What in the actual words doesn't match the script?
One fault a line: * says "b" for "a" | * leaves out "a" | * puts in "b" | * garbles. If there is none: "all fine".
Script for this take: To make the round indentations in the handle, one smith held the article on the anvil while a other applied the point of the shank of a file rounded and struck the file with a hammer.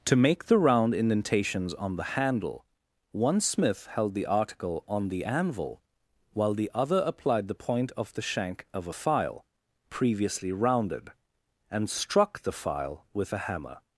* says "on" for "in"
* says "the" for "a"
* puts in "previously"